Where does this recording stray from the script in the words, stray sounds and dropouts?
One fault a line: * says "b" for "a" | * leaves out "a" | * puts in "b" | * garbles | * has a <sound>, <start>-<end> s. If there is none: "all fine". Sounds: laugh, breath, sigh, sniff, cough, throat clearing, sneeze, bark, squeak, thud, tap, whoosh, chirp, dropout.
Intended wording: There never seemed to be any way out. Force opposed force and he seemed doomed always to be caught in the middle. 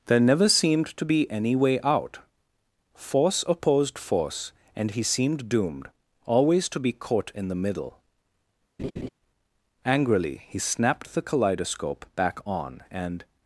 * has a laugh, 8.8-9.1 s
* puts in "Angrily he snapped the kaleidoscope back on and"